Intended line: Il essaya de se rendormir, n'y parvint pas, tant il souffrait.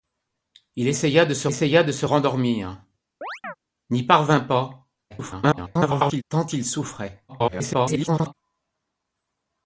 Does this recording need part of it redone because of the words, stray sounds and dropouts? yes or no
yes